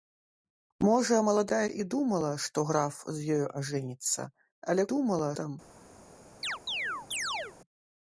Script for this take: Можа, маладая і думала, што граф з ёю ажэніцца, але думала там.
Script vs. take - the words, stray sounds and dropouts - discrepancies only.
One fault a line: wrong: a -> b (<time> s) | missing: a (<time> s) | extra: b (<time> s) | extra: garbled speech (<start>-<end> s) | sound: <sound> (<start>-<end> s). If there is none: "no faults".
sound: chirp (6.4-7.6 s)